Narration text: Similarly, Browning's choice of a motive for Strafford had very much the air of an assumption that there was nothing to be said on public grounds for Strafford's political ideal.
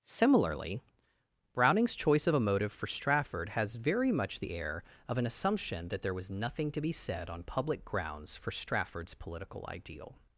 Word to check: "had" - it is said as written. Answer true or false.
false